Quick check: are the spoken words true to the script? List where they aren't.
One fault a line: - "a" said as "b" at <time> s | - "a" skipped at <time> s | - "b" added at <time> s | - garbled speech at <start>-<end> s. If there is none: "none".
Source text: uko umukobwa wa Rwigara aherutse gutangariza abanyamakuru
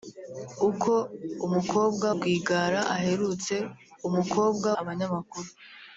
- "wa" skipped at 2.1 s
- "gutangariza" said as "umukobwa" at 4.1 s